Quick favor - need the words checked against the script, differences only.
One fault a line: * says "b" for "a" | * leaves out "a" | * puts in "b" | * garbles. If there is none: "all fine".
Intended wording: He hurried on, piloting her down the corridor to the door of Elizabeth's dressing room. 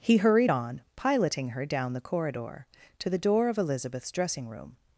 all fine